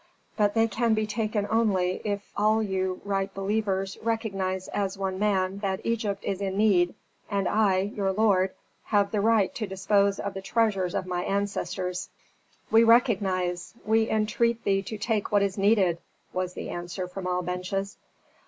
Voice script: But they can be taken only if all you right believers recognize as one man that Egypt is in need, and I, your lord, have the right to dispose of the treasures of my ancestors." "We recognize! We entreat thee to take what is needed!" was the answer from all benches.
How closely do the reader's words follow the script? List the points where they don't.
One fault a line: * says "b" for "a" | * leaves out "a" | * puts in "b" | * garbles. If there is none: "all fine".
all fine